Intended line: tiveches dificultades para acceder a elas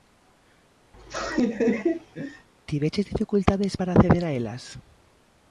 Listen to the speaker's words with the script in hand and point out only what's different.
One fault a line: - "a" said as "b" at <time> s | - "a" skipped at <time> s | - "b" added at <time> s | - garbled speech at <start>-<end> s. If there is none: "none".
none